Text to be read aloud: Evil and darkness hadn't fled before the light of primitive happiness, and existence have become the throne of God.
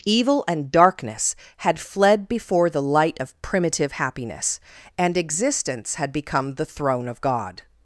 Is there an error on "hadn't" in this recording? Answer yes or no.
yes